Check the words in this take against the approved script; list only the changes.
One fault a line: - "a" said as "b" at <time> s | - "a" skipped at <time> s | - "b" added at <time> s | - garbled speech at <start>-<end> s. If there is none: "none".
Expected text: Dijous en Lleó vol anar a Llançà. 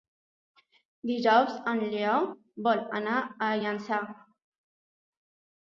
none